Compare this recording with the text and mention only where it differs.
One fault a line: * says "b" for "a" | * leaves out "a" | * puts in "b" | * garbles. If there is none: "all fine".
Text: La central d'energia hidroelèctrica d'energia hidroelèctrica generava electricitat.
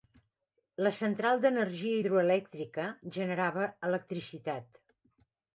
* leaves out "d'energia hidroelèctrica"